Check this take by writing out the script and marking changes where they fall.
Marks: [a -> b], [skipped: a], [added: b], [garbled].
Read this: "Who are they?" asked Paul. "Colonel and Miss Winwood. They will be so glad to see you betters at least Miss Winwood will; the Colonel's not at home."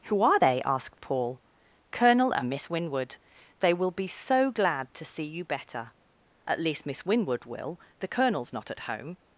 "Who are they?" asked Paul. "Colonel and Miss Winwood. They will be so glad to see you [betters -> better] at least Miss Winwood will; the Colonel's not at home."